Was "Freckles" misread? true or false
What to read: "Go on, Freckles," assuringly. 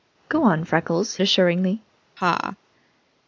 false